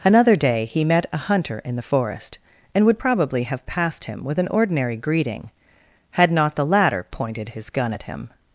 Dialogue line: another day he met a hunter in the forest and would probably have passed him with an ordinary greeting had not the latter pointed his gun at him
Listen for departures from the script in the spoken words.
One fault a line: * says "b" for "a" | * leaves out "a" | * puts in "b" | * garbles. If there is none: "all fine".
all fine